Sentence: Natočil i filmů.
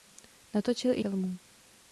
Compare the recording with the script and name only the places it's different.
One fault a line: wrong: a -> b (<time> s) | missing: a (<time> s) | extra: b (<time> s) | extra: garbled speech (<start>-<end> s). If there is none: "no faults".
no faults